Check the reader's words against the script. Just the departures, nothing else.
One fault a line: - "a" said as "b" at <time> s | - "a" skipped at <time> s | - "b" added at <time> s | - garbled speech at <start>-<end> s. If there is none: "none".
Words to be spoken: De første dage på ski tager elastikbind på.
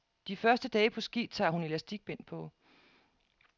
- "hun" added at 1.5 s